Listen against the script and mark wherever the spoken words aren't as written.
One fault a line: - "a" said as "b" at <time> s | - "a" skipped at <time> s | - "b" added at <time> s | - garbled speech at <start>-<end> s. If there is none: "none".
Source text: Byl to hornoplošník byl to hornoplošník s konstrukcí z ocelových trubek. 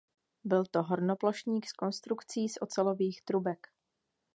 - "byl to hornoplošník" skipped at 1.6 s